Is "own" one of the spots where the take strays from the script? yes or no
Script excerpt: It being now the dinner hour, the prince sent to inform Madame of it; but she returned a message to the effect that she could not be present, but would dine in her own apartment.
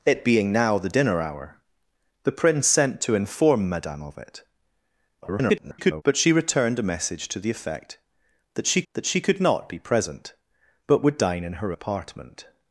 yes